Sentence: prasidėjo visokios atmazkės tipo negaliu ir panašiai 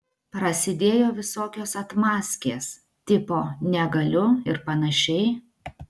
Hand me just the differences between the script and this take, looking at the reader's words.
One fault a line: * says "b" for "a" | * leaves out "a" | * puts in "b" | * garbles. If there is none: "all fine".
all fine